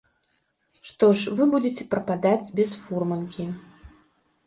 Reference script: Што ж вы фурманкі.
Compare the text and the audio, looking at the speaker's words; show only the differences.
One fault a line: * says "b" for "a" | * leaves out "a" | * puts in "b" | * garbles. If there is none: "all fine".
* puts in "будзеце прападаць без"